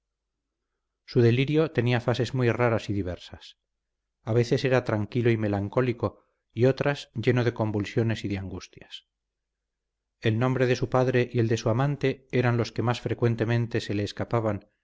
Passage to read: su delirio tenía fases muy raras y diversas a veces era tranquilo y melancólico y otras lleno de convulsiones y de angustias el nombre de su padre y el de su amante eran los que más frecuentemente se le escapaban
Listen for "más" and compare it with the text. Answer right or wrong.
right